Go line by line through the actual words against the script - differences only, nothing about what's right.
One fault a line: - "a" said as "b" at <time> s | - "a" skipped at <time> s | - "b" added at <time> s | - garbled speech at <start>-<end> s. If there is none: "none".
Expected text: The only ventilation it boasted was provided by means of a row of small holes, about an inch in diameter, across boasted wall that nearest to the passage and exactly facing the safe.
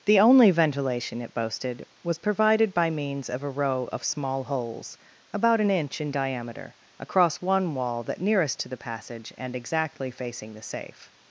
- "boasted" said as "one" at 7.4 s